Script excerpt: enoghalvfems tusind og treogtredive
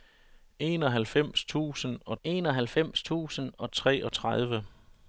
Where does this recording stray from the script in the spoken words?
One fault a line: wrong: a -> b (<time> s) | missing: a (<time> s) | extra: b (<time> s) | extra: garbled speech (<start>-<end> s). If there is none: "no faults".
extra: enoghalvfems tusind og (2.2 s)